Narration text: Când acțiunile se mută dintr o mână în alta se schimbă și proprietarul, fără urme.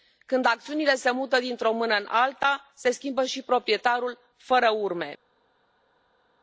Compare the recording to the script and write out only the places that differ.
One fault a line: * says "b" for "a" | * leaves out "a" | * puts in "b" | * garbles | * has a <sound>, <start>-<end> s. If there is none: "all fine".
all fine